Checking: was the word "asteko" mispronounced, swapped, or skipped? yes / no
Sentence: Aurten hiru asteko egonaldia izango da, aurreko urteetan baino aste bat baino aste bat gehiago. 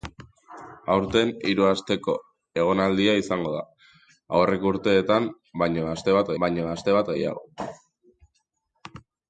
no